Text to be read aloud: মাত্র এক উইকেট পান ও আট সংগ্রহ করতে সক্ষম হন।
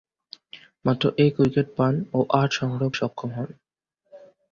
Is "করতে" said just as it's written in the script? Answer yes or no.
no